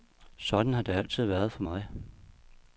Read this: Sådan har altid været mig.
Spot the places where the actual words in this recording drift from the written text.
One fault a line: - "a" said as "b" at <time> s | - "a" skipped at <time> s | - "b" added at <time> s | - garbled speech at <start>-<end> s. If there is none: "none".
- "det" added at 0.8 s
- "for" added at 1.5 s